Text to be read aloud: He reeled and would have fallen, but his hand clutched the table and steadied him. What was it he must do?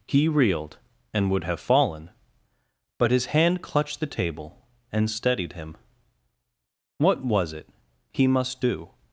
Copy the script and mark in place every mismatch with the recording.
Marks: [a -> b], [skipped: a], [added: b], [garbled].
He reeled and would have fallen, but his hand clutched the table and steadied him. What was it he must do?